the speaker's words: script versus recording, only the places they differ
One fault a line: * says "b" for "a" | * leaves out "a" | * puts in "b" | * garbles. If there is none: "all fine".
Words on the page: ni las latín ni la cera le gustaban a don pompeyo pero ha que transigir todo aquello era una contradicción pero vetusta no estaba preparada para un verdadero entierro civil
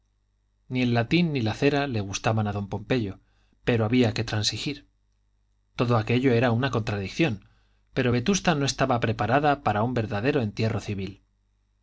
* says "el" for "las"
* says "había" for "ha"